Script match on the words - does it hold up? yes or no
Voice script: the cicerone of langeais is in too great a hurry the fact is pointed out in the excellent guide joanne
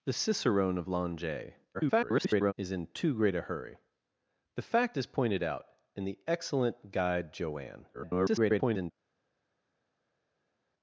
no